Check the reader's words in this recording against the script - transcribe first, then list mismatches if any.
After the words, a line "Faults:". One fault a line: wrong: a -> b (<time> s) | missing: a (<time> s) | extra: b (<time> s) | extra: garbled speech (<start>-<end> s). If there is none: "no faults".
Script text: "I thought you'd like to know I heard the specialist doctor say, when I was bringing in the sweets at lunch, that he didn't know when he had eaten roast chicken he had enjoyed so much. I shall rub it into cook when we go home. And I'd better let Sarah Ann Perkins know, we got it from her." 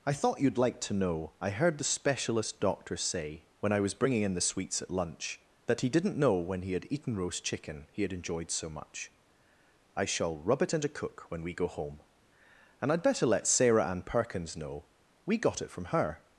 "I thought you'd like to know I heard the specialist doctor say, when I was bringing in the sweets at lunch, that he didn't know when he had eaten roast chicken he had enjoyed so much. I shall rub it into cook when we go home. And I'd better let Sarah Ann Perkins know, we got it from her."
Faults:
no faults